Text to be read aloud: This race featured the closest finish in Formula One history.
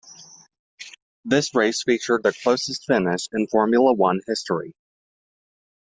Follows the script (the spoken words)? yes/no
yes